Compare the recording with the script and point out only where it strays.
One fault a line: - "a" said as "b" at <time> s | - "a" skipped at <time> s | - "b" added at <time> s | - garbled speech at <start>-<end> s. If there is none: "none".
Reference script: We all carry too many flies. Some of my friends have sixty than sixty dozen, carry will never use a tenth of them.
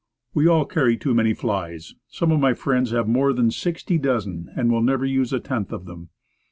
- "sixty" said as "more" at 3.1 s
- "carry" said as "and" at 4.5 s